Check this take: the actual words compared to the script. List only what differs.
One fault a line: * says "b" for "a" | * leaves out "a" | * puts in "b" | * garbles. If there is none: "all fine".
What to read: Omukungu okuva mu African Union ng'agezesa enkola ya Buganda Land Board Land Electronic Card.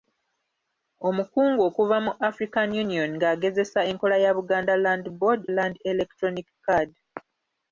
all fine